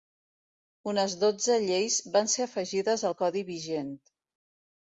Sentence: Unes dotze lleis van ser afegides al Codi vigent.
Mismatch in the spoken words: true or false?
false